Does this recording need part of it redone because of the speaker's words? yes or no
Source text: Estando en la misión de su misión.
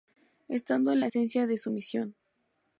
yes